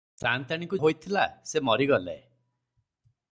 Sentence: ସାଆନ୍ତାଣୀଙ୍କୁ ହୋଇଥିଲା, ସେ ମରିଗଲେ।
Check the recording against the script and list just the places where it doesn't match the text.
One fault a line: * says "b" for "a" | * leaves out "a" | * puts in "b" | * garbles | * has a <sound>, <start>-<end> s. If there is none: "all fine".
all fine